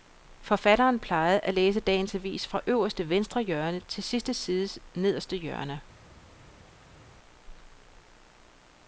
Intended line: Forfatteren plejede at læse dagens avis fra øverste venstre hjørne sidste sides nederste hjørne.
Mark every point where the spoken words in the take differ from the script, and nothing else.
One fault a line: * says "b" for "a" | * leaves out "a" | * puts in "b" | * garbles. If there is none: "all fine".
* puts in "til"